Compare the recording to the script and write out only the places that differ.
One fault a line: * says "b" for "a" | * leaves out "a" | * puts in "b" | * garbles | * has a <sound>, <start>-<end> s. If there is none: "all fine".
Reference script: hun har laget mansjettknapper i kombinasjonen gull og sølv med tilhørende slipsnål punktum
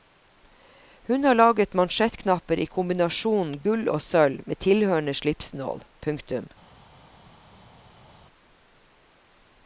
all fine